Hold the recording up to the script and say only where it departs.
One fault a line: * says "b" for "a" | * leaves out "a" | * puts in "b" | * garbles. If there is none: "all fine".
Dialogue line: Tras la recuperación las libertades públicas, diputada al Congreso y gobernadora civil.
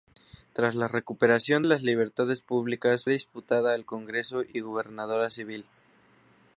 all fine